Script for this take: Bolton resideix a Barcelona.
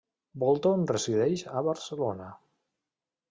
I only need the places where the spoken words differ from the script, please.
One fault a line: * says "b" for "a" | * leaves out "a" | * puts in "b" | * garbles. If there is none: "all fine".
all fine